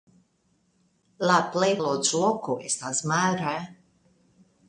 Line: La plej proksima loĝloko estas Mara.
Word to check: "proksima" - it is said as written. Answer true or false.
false